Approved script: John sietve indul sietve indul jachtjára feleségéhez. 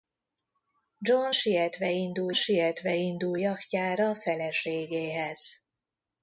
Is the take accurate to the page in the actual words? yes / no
yes